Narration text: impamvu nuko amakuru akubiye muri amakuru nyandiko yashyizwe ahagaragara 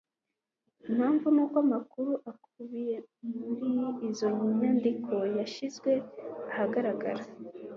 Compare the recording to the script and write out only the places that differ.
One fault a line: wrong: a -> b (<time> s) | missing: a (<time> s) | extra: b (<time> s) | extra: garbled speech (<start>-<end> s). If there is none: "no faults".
wrong: amakuru -> izo (4.1 s)